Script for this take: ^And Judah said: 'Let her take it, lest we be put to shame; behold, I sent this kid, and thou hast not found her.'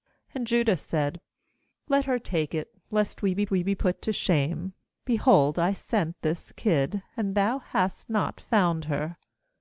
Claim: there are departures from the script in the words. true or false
true